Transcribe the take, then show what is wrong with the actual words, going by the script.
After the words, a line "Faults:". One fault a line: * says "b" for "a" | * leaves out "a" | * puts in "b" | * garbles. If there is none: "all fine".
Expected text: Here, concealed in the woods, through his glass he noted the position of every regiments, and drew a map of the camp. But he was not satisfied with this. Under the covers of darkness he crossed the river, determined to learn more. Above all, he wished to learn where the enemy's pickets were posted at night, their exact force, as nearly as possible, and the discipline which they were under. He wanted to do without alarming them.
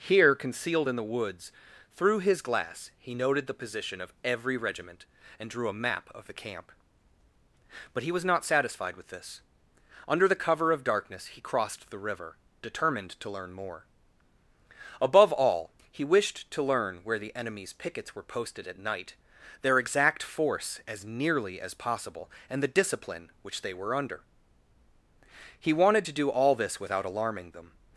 Here, concealed in the woods, through his glass he noted the position of every regiment, and drew a map of the camp. But he was not satisfied with this. Under the cover of darkness he crossed the river, determined to learn more. Above all, he wished to learn where the enemy's pickets were posted at night, their exact force, as nearly as possible, and the discipline which they were under. He wanted to do all this without alarming them.
Faults:
* says "regiment" for "regiments"
* says "cover" for "covers"
* puts in "all this"